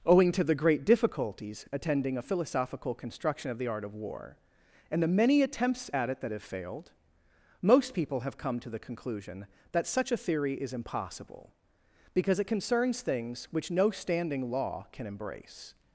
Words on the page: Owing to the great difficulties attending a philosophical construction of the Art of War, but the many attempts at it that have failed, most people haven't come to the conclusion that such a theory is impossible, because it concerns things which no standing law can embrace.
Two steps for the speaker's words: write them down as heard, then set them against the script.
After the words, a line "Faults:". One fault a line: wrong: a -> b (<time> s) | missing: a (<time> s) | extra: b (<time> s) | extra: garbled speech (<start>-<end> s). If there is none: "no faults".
Owing to the great difficulties attending a philosophical construction of the Art of War, and the many attempts at it that have failed, most people have come to the conclusion that such a theory is impossible, because it concerns things which no standing law can embrace.
Faults:
wrong: but -> and (4.9 s)
wrong: haven't -> have (8.2 s)